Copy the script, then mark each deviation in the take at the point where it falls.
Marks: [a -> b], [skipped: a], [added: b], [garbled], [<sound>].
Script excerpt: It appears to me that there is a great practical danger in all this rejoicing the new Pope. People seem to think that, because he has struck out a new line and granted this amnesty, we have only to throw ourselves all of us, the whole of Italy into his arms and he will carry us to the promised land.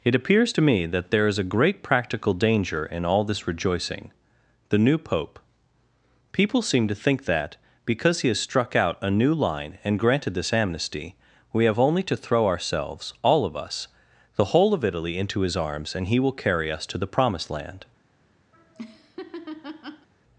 It appears to me that there is a great practical danger in all this rejoicing the new Pope. People seem to think that, because he has struck out a new line and granted this amnesty, we have only to throw ourselves all of us, the whole of Italy into his arms and he will carry us to the promised land. [laugh]